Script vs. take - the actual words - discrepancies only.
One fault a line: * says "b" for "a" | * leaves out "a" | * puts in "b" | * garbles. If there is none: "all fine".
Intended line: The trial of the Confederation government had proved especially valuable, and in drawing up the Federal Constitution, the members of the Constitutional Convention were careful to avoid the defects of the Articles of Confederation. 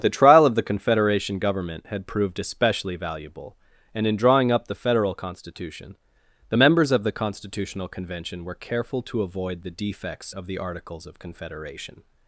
all fine